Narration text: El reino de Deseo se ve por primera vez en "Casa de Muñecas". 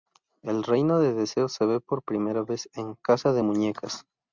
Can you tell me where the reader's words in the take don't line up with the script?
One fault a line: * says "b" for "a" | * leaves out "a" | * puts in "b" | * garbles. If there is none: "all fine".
all fine